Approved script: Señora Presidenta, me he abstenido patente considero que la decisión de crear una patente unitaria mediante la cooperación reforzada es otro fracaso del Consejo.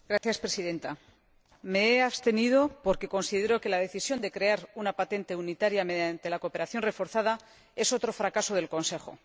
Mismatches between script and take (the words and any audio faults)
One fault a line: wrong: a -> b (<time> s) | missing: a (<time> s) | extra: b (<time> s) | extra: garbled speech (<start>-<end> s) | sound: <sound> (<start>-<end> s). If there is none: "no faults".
sound: dropout (0.2-0.2 s)
wrong: patente -> porque (2.9 s)